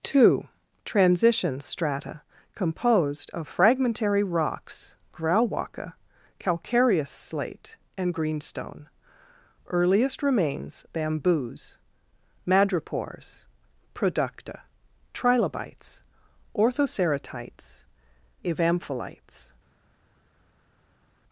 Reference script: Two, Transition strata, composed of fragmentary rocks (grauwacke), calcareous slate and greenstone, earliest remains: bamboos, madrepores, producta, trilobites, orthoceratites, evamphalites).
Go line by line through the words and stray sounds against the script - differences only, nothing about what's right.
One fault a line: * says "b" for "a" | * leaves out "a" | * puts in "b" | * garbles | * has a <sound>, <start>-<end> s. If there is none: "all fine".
all fine